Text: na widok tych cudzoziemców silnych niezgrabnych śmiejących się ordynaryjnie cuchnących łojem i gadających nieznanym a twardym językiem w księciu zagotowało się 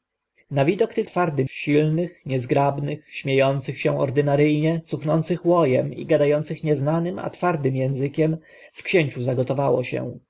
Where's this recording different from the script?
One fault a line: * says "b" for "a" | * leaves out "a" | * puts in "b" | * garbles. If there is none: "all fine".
* says "twardym" for "cudzoziemców"